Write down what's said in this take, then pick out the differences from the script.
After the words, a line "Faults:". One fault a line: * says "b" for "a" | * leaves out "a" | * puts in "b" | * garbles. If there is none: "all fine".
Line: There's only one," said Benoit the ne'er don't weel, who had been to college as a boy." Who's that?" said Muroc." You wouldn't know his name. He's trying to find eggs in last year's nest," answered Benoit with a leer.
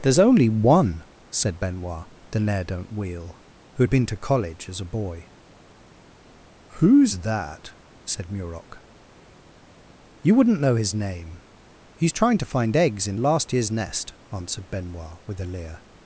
There's only one," said Benoit the ne'er don't weel, who had been to college as a boy." Who's that?" said Muroc." You wouldn't know his name. He's trying to find eggs in last year's nest," answered Benoit with a leer.
Faults:
all fine